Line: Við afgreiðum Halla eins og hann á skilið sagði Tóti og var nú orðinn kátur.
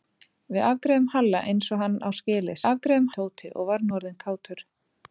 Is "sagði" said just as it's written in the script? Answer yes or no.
no